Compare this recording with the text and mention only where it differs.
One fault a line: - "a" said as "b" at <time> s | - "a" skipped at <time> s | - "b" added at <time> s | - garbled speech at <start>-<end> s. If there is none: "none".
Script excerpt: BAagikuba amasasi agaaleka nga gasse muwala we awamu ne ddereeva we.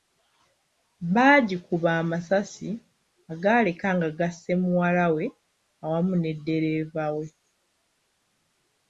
none